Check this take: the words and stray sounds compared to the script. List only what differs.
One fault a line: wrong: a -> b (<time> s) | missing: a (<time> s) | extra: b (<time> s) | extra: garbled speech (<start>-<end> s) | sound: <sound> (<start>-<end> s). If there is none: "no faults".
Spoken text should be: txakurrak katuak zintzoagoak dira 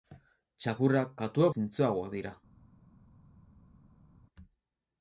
no faults